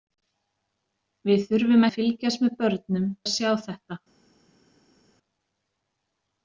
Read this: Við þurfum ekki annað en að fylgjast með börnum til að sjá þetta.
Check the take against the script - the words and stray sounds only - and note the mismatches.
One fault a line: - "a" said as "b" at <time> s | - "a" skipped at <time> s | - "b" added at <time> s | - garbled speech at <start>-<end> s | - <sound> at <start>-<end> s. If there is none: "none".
- "ekki annað en" skipped at 1.9 s
- "til" skipped at 3.1 s